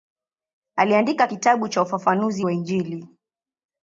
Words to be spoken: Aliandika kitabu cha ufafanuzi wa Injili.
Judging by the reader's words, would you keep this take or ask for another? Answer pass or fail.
pass